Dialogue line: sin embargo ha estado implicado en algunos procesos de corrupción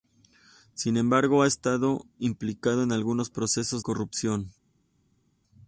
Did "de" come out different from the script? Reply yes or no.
yes